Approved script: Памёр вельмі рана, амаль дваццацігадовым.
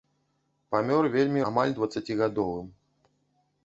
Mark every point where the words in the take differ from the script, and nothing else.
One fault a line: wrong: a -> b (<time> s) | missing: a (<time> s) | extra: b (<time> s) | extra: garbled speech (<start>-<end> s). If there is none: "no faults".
missing: рана (1.4 s)